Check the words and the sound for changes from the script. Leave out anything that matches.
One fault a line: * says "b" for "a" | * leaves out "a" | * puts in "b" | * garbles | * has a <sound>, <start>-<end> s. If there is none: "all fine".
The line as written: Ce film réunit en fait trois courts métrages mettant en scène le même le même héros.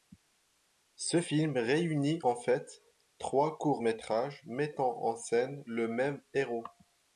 * leaves out "le même"